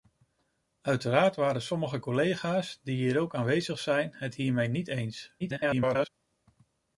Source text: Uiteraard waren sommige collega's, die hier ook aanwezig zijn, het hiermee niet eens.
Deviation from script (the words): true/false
true